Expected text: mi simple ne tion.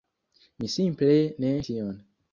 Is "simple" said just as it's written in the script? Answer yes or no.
yes